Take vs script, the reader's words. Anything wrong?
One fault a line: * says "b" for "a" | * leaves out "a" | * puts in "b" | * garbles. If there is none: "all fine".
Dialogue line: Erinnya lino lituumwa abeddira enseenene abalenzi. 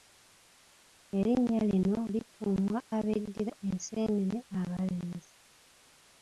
all fine